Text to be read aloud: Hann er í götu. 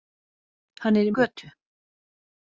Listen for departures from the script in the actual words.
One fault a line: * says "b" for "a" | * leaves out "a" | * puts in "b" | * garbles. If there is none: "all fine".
all fine